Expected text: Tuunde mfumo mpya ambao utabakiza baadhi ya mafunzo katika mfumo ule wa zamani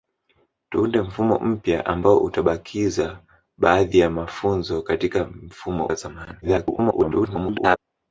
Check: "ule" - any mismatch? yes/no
yes